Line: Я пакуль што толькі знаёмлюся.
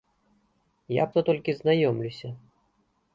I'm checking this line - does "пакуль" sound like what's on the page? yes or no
no